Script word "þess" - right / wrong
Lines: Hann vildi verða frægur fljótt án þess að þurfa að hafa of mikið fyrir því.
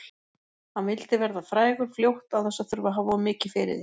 right